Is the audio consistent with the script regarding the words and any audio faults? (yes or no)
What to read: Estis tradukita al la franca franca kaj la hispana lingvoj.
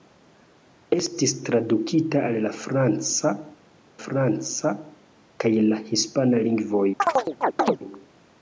no